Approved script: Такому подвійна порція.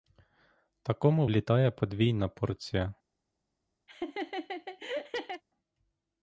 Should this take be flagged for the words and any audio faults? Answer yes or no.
yes